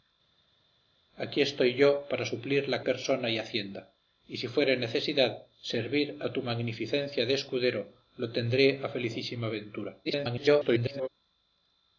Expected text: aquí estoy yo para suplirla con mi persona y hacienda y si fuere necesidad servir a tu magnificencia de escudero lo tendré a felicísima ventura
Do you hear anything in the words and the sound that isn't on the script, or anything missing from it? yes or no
yes